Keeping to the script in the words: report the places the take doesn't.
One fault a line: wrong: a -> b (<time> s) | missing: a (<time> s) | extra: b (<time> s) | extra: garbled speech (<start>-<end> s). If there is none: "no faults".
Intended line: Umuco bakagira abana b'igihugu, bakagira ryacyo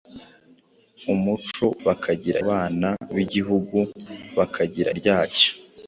no faults